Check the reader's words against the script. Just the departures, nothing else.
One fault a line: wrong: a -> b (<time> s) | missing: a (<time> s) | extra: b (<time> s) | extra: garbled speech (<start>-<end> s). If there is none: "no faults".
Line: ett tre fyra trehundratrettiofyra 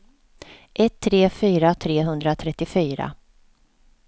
no faults